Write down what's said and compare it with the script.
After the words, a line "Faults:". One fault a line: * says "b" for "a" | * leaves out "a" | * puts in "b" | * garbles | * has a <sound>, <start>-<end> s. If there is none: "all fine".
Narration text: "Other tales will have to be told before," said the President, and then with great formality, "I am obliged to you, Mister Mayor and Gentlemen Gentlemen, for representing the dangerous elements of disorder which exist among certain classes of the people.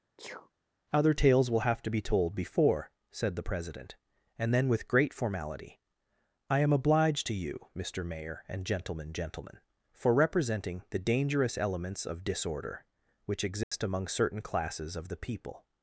"Other tales will have to be told before," said the President, and then with great formality, "I am obliged to you, Mister Mayor and Gentlemen Gentlemen, for representing the dangerous elements of disorder which exist among certain classes of the people.
Faults:
* has a sneeze, 0.2-0.5 s
* has a dropout, 13.6-13.7 s